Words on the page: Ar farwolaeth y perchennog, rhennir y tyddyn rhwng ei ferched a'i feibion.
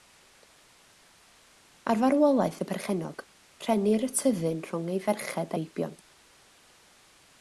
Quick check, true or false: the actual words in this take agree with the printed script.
false